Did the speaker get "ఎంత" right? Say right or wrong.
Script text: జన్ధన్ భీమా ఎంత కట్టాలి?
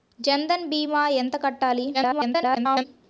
right